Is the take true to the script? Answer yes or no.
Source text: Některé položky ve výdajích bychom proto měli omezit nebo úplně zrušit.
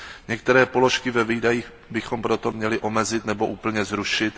yes